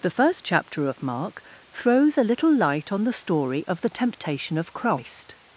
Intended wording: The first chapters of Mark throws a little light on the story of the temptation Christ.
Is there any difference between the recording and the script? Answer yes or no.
yes